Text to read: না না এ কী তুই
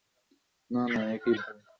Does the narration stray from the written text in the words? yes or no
no